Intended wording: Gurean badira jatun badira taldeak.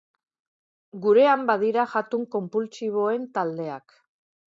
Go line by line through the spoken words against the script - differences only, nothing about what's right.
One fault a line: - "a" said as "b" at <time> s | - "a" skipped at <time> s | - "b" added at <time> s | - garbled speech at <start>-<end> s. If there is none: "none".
- "badira" said as "konpultsiboen" at 2.4 s